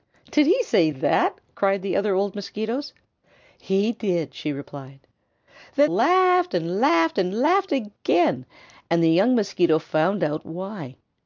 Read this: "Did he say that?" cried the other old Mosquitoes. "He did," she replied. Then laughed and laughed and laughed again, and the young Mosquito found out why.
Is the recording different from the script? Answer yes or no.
no